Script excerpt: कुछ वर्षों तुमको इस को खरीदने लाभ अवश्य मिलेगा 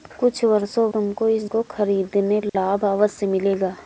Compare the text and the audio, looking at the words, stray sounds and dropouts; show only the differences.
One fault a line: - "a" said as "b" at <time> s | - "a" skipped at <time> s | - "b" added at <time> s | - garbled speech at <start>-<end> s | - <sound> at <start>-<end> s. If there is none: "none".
- dropout at 2.5-2.5 s